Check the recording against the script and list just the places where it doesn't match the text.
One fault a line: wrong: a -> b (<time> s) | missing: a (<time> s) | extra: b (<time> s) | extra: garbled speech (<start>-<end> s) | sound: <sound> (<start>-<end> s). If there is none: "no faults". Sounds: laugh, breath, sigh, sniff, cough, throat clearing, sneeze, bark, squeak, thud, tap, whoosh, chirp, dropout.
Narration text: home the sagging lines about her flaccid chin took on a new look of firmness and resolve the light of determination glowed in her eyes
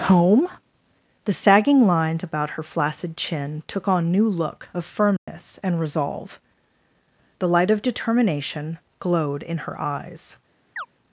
missing: a (4.1 s)
sound: dropout (5.2-5.3 s)
sound: chirp (10.8-10.9 s)